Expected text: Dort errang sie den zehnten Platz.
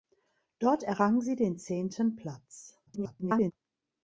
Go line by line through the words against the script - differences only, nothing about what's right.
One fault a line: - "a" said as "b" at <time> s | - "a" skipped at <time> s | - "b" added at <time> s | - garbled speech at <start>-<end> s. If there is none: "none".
- garbled speech at 2.9-3.5 s